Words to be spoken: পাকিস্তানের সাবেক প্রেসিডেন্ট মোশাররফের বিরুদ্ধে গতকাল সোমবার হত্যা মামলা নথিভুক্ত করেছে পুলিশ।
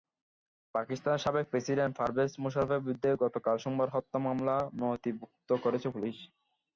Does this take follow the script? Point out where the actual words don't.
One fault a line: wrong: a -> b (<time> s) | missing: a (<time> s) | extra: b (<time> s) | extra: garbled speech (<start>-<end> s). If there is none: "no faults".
extra: পারভেজ (2.0 s)